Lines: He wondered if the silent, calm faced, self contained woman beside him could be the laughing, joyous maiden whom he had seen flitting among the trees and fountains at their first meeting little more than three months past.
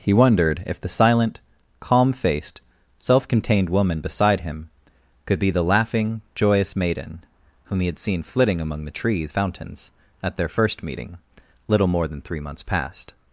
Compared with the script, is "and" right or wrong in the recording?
wrong